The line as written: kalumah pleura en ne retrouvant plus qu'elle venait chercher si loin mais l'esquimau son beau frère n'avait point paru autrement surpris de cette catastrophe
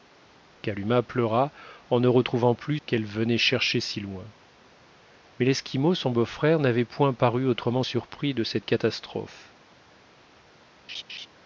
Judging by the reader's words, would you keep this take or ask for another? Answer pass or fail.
pass